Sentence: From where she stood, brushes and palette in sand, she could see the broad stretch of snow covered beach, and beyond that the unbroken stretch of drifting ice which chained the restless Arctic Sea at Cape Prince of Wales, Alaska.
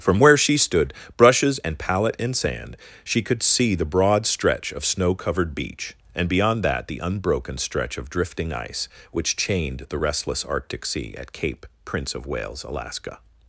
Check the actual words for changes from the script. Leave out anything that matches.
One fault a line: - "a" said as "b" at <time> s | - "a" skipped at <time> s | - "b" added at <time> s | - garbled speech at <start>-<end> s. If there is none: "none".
none